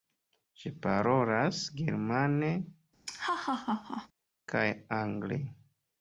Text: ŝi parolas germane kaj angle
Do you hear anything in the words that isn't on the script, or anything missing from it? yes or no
no